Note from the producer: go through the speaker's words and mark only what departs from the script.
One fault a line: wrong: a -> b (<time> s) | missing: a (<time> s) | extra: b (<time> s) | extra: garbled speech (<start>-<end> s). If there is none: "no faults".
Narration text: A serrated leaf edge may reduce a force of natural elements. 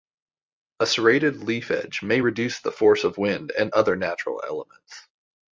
wrong: a -> the (2.6 s)
extra: wind and other (3.2 s)